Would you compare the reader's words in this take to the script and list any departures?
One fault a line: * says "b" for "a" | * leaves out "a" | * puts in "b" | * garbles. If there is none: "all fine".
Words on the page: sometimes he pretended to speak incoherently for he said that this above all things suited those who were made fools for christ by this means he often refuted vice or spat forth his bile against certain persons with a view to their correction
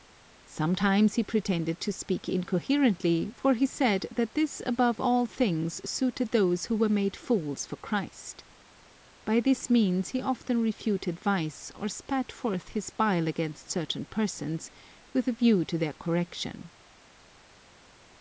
all fine